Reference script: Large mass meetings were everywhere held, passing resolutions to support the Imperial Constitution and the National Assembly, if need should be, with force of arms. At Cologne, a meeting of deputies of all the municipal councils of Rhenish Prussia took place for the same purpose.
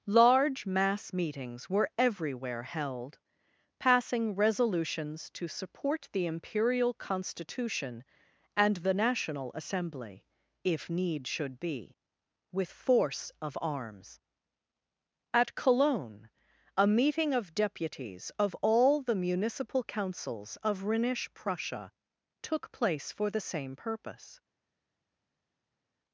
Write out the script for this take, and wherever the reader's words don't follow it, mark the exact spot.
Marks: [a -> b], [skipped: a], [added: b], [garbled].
Large mass meetings were everywhere held, passing resolutions to support the Imperial Constitution and the National Assembly, if need should be, with force of arms. At Cologne, a meeting of deputies of all the municipal councils of Rhenish Prussia took place for the same purpose.